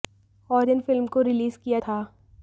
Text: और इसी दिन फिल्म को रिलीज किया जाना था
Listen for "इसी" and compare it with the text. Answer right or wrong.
wrong